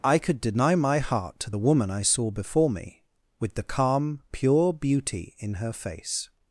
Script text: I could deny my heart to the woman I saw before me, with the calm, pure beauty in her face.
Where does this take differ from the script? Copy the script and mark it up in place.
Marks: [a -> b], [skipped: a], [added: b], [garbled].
I could deny my heart to the woman I saw before me, with the calm, pure beauty in her face.